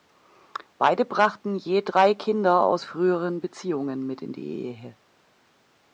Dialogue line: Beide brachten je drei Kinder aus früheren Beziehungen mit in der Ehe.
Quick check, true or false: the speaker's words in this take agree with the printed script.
false